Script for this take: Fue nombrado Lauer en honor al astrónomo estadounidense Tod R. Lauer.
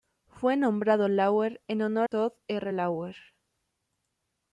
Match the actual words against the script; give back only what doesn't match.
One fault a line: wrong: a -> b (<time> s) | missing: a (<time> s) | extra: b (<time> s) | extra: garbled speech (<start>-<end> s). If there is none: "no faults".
missing: al astrónomo estadounidense (2.1 s)